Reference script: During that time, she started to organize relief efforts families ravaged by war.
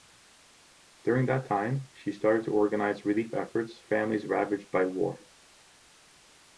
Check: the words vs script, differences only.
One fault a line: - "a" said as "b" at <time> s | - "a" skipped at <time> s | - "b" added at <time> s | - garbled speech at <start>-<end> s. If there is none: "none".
none